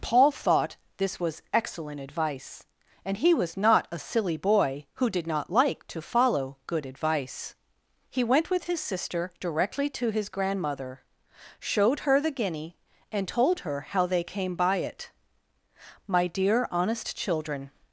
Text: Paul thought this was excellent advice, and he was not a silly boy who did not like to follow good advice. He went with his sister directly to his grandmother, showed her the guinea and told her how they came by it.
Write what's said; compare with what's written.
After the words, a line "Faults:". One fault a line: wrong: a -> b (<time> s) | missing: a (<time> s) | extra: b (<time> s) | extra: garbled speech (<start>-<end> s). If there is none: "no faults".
Paul thought this was excellent advice, and he was not a silly boy who did not like to follow good advice. He went with his sister directly to his grandmother, showed her the guinea and told her how they came by it. 'My dear honest children
Faults:
extra: My dear honest children (16.1 s)